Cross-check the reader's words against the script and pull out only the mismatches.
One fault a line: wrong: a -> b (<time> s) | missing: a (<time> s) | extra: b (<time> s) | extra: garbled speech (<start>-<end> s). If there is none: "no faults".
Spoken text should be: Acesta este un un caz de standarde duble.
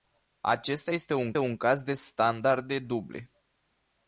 no faults